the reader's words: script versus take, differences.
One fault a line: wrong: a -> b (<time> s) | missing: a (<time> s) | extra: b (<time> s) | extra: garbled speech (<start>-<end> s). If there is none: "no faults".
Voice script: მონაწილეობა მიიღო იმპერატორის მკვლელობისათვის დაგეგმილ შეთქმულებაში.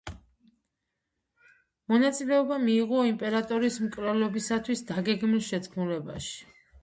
no faults